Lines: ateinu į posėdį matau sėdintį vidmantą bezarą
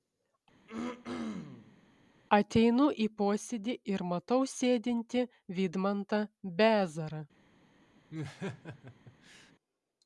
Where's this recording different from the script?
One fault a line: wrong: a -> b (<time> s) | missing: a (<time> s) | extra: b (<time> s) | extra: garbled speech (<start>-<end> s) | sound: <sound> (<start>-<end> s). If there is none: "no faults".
sound: throat clearing (0.7-1.8 s)
extra: ir (3.9 s)
sound: laugh (8.1-9.5 s)